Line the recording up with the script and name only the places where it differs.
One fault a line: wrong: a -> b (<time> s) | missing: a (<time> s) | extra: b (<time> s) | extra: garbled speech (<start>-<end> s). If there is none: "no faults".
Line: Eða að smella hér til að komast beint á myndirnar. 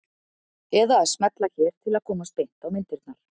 no faults